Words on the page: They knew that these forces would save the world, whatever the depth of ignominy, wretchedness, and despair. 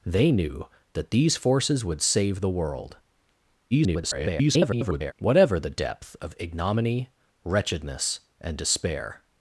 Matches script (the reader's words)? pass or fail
fail